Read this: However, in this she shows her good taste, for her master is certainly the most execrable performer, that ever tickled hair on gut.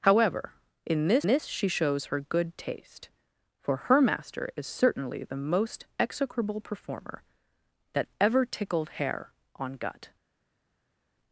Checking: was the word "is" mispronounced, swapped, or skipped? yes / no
no